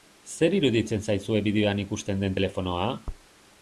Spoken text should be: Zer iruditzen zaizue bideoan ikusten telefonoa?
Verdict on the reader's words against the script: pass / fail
fail